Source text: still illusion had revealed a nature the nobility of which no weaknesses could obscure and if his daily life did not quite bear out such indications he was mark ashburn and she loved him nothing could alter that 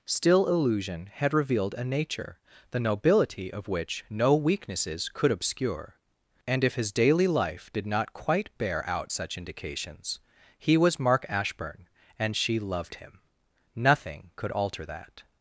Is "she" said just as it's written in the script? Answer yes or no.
yes